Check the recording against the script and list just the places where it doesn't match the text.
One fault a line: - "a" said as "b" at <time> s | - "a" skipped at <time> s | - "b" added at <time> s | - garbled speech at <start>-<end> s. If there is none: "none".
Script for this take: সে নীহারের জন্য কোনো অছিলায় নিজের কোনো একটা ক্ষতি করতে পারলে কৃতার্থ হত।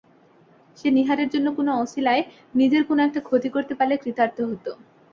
none